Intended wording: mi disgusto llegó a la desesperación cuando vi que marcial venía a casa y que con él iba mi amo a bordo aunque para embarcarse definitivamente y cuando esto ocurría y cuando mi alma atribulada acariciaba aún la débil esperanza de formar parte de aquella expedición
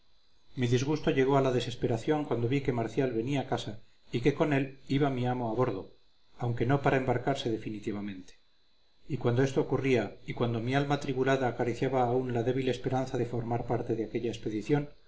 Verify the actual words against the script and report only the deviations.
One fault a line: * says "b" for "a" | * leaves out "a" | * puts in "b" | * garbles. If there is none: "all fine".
* puts in "no"